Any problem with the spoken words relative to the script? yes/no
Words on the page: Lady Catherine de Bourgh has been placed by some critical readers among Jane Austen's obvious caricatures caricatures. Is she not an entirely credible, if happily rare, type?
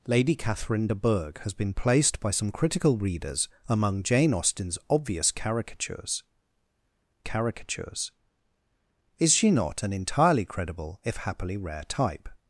no